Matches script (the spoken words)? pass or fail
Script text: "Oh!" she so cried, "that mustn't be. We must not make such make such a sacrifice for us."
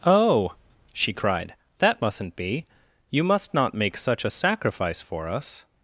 fail